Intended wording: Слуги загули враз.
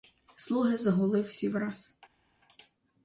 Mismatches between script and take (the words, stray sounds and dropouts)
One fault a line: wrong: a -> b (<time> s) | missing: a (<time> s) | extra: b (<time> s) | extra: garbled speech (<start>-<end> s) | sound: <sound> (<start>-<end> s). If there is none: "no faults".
extra: всі (1.2 s)